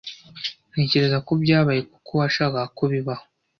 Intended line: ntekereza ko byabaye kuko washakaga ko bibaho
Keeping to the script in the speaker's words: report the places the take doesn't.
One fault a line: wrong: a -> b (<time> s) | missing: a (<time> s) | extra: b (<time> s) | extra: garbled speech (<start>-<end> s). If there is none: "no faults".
no faults